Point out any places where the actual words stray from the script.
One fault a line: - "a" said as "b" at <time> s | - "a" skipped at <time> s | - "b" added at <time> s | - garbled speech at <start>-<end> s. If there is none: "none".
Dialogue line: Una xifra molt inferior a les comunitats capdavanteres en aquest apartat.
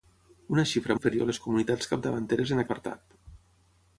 - "molt" skipped at 0.9 s
- "aquest" skipped at 2.6 s